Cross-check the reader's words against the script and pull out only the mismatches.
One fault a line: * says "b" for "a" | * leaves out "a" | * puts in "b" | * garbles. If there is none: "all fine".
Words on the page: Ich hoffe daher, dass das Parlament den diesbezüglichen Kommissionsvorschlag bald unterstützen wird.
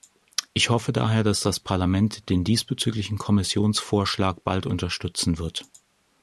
all fine